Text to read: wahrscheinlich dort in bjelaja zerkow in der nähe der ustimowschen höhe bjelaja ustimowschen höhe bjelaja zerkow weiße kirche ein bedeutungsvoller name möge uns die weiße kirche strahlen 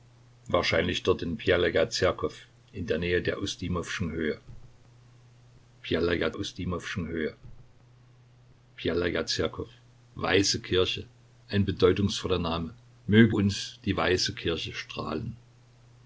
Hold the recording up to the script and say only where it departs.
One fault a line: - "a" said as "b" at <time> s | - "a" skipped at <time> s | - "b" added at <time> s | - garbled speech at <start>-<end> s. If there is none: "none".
none